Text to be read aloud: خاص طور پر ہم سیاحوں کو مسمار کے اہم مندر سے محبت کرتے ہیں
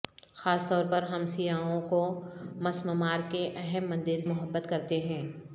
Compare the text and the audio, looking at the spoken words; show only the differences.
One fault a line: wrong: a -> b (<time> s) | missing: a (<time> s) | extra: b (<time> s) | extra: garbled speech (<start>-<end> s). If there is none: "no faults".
missing: سے (4.2 s)